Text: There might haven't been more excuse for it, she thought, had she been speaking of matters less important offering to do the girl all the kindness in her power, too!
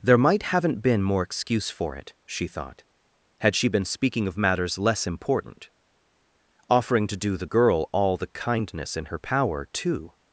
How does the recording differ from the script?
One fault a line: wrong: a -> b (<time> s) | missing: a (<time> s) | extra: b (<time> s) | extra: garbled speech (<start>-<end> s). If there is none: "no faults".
no faults